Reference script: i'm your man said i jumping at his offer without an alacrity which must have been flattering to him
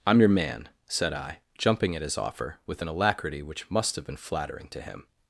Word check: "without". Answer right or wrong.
wrong